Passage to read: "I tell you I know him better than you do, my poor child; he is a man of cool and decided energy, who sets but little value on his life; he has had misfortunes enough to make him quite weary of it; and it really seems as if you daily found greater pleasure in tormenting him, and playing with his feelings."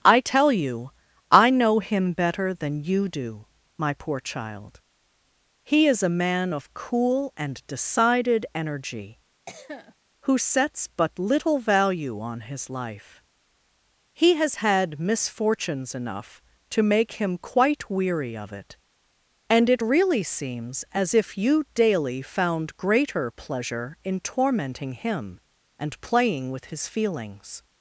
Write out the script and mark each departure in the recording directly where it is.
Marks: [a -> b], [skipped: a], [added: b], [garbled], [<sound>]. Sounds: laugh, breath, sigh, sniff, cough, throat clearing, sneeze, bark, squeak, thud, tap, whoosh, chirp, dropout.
"I tell you I know him better than you do, my poor child; he is a man of cool and decided energy, [cough] who sets but little value on his life; he has had misfortunes enough to make him quite weary of it; and it really seems as if you daily found greater pleasure in tormenting him, and playing with his feelings."